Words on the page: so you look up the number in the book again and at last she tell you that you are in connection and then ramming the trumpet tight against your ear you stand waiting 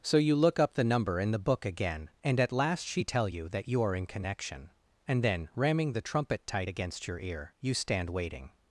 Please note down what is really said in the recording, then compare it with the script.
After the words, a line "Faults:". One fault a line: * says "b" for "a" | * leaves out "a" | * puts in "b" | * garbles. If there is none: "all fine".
so you look up the number in the book again and at last she tell you that you are in connection and then ramming the trumpet tight against your ear you stand waiting
Faults:
all fine